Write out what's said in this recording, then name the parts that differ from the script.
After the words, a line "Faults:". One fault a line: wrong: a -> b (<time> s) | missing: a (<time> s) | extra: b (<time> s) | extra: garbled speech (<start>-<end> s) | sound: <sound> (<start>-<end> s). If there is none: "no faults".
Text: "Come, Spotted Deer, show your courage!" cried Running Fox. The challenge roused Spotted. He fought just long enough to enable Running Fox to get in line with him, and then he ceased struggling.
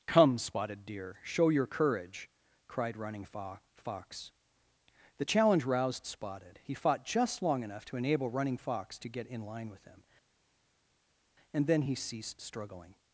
"Come, Spotted Deer, show your courage!" cried Running Fox. The challenge roused Spotted. He fought just long enough to enable Running Fox to get in line with him, and then he ceased struggling.
Faults:
no faults